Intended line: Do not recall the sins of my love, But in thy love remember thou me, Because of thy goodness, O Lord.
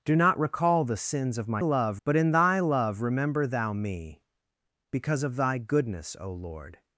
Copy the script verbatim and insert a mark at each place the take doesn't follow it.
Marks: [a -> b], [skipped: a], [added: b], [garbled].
Do not recall the sins of my love, But in thy love remember thou me, Because of thy goodness, O Lord.